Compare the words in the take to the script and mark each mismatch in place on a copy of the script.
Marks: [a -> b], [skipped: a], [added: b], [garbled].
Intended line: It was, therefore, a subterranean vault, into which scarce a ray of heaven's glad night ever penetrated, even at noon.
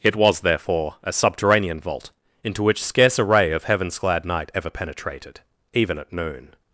It was, therefore, a subterranean vault, into which scarce a ray of heaven's glad night ever penetrated, even at noon.